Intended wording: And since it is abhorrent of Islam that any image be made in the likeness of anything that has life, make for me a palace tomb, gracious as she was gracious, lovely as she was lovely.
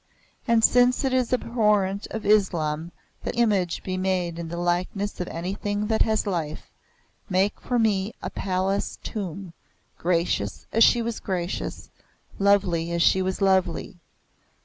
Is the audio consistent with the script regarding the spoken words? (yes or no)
no